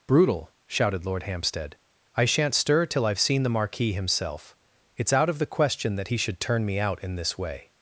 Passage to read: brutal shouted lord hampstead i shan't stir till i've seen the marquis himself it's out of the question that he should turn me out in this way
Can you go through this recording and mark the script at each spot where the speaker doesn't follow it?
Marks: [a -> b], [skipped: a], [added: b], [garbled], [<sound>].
brutal shouted lord hampstead i shan't stir till i've seen the marquis himself it's out of the question that he should turn me out in this way